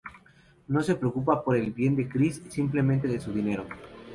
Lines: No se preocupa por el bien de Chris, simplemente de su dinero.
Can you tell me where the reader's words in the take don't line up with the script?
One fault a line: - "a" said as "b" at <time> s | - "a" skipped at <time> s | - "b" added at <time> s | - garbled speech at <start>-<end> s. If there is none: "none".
none